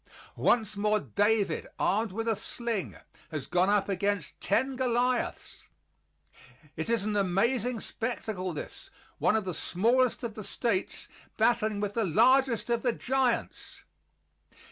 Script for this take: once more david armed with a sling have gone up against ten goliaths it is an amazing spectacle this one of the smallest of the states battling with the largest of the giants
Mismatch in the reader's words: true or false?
true